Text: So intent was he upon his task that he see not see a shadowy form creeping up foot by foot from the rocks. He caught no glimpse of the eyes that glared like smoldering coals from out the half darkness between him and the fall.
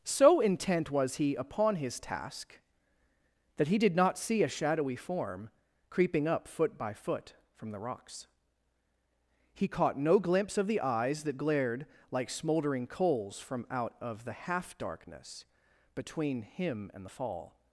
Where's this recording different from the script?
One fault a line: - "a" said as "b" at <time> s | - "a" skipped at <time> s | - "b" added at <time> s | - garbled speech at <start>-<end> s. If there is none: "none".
- "see" said as "did" at 3.8 s
- "of" added at 14.0 s